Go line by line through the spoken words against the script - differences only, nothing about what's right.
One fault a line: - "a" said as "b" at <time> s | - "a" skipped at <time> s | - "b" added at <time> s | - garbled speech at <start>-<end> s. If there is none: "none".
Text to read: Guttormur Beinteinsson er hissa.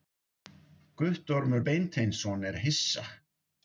none